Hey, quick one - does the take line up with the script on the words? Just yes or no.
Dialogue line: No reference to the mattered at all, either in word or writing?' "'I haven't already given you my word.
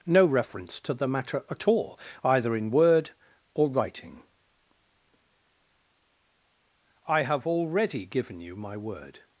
no